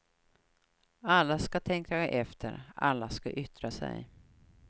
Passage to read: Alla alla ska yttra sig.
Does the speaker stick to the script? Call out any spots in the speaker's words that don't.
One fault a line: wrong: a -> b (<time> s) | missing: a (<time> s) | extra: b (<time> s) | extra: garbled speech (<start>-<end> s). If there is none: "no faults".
extra: ska tänka efter (1.4 s)